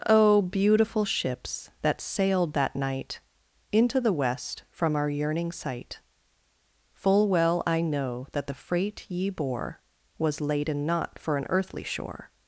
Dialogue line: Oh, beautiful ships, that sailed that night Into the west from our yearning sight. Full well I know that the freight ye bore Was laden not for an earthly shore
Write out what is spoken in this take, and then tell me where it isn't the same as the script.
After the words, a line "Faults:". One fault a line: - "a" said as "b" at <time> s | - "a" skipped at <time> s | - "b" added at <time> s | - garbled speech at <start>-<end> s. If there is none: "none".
Oh, beautiful ships, that sailed that night Into the west from our yearning sight. Full well I know that the freight ye bore Was laden not for an earthly shore
Faults:
none